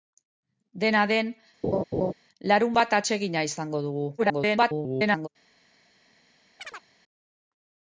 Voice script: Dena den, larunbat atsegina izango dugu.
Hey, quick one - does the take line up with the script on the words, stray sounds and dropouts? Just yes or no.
no